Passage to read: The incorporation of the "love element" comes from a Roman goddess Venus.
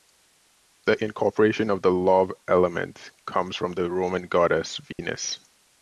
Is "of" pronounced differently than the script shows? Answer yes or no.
no